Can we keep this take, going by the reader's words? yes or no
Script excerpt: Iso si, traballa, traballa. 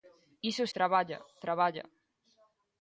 no